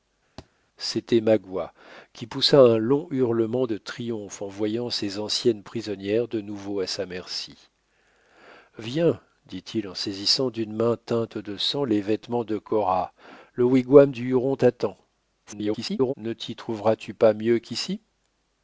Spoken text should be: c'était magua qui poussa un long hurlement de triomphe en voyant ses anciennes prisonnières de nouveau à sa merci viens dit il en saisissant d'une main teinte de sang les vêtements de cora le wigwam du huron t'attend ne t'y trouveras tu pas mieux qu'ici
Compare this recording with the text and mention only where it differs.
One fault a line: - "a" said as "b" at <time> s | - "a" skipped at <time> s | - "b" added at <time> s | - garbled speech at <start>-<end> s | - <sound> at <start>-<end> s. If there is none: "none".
- thud at 0.4-0.5 s
- garbled speech at 15.5-16.1 s